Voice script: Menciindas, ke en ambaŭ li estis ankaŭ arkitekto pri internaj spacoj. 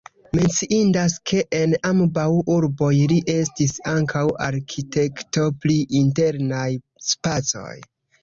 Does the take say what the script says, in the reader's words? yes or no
no